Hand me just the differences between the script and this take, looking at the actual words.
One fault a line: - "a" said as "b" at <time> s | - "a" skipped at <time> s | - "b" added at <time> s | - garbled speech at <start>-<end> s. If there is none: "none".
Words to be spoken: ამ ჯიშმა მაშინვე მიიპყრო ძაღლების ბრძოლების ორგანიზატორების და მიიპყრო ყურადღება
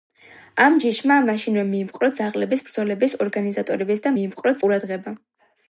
none